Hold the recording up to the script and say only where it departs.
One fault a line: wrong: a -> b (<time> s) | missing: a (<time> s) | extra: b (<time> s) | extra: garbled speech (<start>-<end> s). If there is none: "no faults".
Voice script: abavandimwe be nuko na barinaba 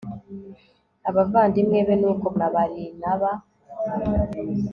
no faults